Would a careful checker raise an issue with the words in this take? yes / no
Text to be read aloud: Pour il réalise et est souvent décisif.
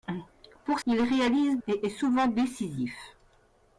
no